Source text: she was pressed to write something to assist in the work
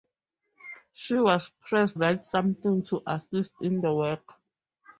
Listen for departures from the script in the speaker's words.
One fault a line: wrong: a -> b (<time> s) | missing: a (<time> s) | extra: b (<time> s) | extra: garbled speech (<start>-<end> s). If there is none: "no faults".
missing: to (2.0 s)